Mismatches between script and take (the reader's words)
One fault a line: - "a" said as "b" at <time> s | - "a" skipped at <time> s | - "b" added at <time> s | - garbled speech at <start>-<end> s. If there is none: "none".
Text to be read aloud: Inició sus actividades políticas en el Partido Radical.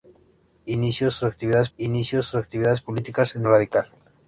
- "inició sus actividades" added at 1.8 s
- "el Partido" skipped at 3.4 s